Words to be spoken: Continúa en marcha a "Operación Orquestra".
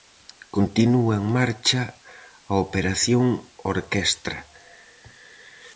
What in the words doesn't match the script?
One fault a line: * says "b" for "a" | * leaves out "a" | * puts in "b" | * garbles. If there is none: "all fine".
all fine